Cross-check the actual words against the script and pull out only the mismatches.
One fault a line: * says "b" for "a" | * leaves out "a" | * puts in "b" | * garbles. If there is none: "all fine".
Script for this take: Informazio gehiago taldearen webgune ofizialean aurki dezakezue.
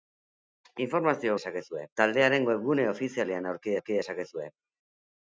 * says "dezakezue" for "gehiago"
* puts in "aurki"